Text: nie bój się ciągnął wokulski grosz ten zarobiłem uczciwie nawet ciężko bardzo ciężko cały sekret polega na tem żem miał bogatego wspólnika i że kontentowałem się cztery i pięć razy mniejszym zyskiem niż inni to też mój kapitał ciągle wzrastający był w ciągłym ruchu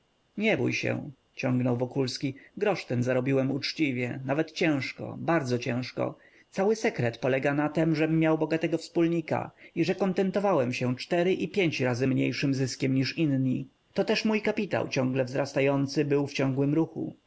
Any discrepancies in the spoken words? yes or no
no